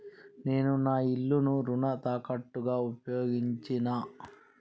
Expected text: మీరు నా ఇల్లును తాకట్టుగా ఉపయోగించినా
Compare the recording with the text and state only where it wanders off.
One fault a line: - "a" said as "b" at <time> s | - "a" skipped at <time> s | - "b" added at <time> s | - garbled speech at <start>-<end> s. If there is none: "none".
- "మీరు" said as "నేను" at 0.5 s
- "రుణ" added at 1.6 s